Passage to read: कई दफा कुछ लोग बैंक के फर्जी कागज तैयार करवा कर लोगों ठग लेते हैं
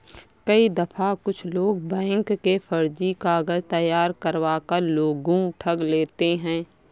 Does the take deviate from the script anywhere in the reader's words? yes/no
no